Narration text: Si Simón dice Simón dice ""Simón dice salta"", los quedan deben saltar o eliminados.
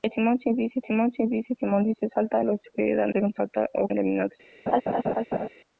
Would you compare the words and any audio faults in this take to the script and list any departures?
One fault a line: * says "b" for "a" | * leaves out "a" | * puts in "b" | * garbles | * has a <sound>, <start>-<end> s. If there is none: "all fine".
* has a laugh, 4.7-5.5 s